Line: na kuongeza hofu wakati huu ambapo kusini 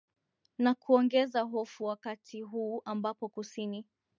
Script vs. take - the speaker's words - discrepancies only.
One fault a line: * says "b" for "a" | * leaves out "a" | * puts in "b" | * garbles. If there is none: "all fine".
all fine